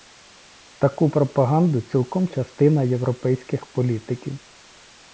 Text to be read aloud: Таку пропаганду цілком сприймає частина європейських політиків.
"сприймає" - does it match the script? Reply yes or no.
no